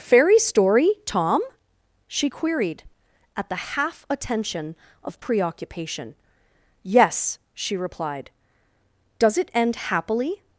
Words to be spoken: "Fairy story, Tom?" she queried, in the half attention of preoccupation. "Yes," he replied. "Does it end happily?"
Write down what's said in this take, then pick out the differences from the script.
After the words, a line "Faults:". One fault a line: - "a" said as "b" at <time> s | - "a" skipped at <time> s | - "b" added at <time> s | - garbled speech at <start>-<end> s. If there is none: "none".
"Fairy story, Tom?" she queried, at the half attention of preoccupation. "Yes," she replied. "Does it end happily?"
Faults:
- "in" said as "at" at 3.4 s
- "he" said as "she" at 7.5 s